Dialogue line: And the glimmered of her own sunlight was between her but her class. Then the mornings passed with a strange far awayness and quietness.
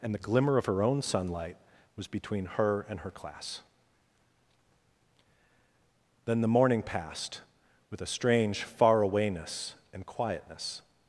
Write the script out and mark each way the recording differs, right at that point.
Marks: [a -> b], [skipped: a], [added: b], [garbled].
And the [glimmered -> glimmer] of her own sunlight was between her [but -> and] her class. Then the [mornings -> morning] passed with a strange far awayness and quietness.